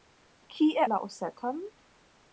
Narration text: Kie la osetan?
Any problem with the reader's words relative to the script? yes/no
no